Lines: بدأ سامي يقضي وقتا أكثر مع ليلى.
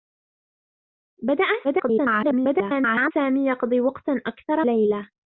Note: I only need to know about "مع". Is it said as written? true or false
false